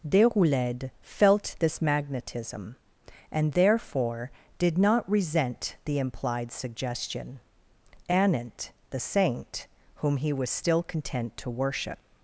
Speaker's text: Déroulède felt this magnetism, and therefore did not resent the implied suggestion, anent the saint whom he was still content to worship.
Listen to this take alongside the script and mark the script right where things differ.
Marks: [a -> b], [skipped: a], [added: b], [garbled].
Déroulède felt this magnetism, and therefore did not resent the implied suggestion, anent the saint whom he was still content to worship.